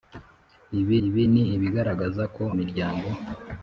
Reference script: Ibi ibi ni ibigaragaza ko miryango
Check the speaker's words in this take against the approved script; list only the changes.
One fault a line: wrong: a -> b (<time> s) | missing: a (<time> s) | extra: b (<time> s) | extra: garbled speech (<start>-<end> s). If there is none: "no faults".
no faults